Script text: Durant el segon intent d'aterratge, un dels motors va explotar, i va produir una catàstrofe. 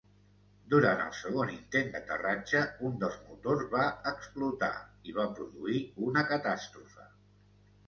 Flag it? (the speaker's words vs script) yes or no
no